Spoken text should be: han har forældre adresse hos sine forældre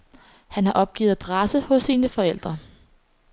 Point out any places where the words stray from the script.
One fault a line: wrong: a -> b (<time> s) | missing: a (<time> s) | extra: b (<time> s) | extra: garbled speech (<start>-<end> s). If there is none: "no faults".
wrong: forældre -> opgivet (0.7 s)